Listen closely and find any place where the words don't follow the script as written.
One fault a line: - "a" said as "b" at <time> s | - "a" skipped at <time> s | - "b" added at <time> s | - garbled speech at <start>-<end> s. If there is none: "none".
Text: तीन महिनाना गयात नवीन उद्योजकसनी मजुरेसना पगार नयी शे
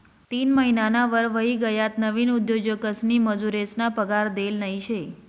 - "वर व्हयी" added at 1.1 s
- "देल" added at 4.3 s